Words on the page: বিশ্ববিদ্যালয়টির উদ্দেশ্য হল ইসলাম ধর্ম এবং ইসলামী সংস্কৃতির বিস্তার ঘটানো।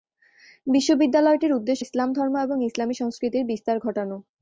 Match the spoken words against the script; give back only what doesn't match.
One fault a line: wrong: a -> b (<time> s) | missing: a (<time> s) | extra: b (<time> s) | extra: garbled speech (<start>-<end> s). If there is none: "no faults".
missing: হল (1.8 s)